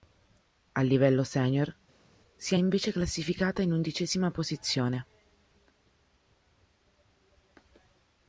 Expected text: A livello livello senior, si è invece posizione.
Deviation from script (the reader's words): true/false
true